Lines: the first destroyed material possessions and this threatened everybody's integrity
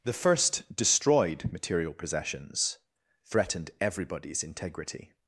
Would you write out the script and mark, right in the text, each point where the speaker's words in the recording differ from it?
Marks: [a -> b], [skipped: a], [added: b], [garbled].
the first destroyed material possessions [skipped: and this] threatened everybody's integrity